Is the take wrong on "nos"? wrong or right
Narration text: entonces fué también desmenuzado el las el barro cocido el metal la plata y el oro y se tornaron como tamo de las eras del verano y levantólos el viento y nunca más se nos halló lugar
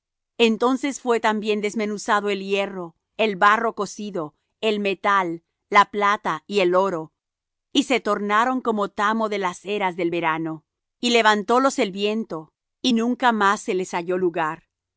wrong